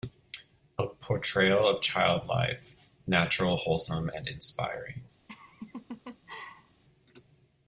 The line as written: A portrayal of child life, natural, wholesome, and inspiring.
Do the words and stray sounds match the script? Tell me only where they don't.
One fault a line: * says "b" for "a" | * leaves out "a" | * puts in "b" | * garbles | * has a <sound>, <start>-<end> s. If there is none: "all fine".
* has a laugh, 5.3-6.8 s